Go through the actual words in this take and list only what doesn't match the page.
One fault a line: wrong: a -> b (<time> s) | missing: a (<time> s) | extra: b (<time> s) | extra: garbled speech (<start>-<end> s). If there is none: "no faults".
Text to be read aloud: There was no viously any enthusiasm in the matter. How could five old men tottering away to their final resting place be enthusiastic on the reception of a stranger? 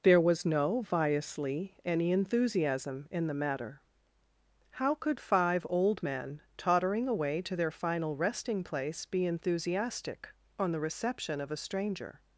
no faults